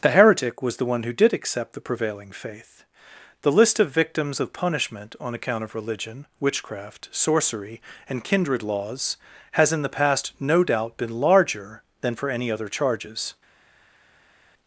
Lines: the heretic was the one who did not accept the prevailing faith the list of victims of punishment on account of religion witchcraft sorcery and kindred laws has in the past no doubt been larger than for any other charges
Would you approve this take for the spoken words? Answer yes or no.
no